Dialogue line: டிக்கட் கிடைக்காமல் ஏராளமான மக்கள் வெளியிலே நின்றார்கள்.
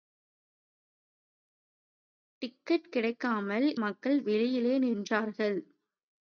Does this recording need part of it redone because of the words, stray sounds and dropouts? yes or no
yes